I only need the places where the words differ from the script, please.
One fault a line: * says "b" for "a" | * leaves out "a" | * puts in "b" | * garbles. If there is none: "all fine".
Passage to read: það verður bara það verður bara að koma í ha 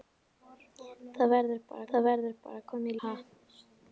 all fine